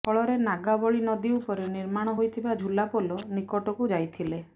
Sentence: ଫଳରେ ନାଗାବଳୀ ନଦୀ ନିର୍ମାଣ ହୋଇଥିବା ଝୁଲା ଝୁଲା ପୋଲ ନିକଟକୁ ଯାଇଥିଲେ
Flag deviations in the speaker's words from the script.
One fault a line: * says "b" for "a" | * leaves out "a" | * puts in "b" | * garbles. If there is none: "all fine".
* puts in "ଉପରେ"
* leaves out "ଝୁଲା"